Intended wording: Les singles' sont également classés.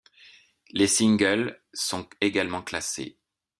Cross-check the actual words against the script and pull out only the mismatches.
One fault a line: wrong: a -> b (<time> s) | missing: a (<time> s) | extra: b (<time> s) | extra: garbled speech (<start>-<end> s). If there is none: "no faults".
no faults